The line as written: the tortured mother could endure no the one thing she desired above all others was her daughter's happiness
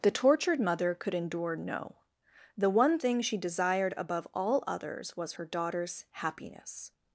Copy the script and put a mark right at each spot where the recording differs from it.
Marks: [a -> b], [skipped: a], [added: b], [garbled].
the tortured mother could endure no the one thing she desired above all others was her daughter's happiness